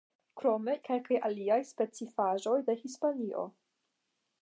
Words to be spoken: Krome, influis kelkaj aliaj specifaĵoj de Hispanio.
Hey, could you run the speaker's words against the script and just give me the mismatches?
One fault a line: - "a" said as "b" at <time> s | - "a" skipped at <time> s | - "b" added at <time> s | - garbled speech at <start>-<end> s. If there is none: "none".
- "influis" skipped at 0.7 s